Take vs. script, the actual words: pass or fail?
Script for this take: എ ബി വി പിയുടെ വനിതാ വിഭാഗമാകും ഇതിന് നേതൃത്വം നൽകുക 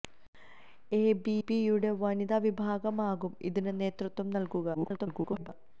fail